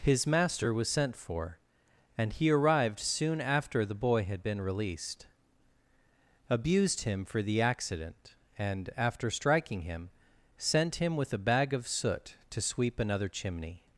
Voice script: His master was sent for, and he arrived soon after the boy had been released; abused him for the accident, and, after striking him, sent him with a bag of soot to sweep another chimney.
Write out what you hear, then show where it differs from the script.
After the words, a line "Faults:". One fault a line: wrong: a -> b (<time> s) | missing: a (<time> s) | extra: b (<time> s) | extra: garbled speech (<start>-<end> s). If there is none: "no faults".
His master was sent for, and he arrived soon after the boy had been released; abused him for the accident, and, after striking him, sent him with a bag of soot to sweep another chimney.
Faults:
no faults